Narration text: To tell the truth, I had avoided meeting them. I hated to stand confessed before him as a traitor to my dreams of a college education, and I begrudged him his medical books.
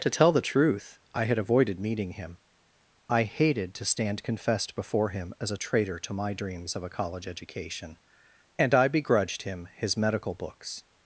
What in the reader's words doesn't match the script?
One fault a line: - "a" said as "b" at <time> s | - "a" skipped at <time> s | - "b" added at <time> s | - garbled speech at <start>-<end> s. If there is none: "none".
- "them" said as "him" at 2.1 s